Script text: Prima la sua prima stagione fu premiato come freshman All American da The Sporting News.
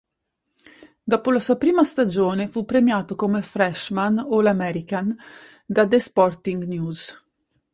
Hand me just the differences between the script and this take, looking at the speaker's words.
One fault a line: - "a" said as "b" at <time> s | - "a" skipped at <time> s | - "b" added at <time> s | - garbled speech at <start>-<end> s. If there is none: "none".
- "Prima" said as "Dopo" at 1.0 s